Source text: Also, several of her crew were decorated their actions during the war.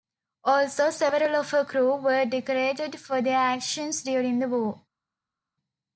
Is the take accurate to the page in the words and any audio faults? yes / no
no